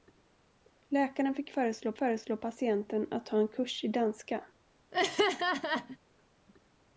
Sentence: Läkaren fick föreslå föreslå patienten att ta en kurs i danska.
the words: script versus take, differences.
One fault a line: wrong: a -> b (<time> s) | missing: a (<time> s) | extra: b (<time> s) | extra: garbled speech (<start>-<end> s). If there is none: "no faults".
no faults